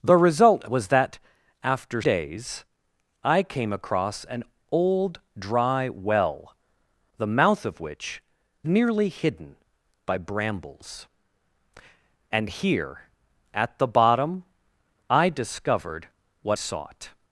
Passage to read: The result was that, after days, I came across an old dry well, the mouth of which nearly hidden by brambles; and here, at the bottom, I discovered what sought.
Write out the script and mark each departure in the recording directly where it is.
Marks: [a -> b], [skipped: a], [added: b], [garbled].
The result was that, after days, I came across an old dry well, the mouth of which nearly hidden by brambles; and here, at the bottom, I discovered what sought.